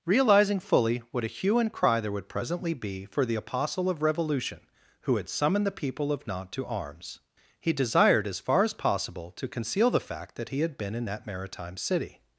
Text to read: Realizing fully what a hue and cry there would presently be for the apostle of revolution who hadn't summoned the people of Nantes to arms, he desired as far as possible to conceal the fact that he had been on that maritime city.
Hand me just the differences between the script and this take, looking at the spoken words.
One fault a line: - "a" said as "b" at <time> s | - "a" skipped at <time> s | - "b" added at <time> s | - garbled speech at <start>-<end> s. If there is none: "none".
- "hadn't" said as "had" at 5.2 s
- "on" said as "in" at 10.9 s